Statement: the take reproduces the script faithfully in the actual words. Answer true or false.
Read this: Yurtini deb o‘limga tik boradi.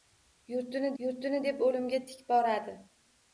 false